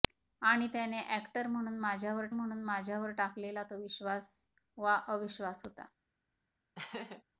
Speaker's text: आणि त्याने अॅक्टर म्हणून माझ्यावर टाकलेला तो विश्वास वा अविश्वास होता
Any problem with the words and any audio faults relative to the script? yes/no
yes